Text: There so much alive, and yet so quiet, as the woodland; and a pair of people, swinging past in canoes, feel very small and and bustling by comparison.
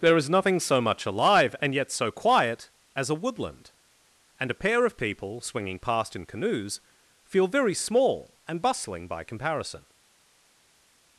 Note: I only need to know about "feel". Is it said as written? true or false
true